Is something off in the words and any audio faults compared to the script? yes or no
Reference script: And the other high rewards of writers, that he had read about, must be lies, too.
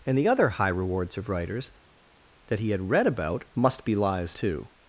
no